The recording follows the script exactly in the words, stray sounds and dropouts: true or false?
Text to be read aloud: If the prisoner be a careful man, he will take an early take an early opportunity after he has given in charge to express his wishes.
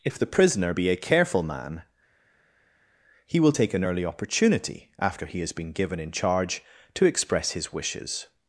false